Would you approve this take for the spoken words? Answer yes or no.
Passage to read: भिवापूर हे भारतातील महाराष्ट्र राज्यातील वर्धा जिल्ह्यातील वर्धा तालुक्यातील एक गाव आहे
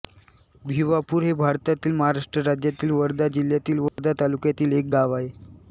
yes